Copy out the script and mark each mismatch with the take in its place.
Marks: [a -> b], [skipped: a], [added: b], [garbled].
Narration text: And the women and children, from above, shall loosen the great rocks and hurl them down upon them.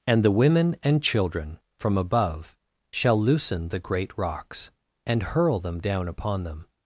And the women and children, from above, shall loosen the great rocks and hurl them down upon them.